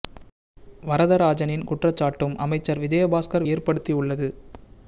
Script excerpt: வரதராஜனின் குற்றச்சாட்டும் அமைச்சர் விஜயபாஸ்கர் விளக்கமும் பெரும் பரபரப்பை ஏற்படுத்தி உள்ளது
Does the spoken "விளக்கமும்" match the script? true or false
false